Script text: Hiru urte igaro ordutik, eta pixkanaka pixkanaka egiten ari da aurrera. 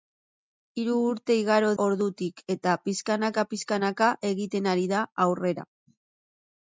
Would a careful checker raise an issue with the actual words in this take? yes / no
no